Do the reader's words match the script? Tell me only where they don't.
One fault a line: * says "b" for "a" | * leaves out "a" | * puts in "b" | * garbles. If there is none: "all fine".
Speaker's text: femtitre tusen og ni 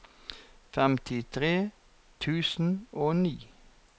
all fine